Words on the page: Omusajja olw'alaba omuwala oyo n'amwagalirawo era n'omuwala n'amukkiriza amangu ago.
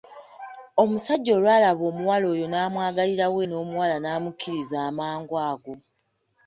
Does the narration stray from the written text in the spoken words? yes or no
yes